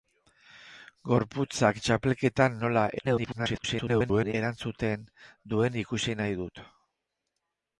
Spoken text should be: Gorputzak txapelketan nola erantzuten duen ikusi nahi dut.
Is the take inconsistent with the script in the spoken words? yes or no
yes